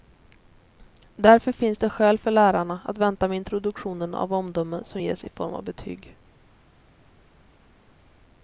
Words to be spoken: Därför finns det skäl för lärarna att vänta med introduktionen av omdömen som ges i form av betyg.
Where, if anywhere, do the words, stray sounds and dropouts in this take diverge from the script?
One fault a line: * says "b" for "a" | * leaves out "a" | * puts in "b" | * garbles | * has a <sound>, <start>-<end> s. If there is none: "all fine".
all fine